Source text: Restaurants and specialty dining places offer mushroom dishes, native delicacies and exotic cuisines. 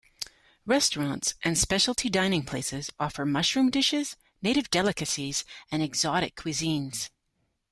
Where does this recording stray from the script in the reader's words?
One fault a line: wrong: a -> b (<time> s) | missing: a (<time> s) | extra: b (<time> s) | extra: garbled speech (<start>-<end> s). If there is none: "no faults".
no faults